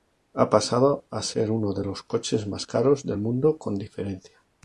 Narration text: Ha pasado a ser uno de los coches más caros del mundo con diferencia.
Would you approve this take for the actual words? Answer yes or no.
yes